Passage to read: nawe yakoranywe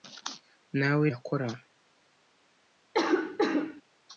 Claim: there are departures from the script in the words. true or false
false